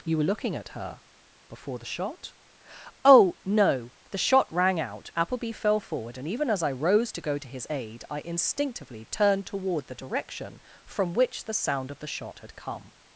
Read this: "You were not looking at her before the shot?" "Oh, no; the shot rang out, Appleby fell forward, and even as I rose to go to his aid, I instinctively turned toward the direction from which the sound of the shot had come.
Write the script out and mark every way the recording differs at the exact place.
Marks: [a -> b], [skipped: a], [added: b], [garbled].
"You were [skipped: not] looking at her before the shot?" "Oh, no; the shot rang out, Appleby fell forward, and even as I rose to go to his aid, I instinctively turned toward the direction from which the sound of the shot had come.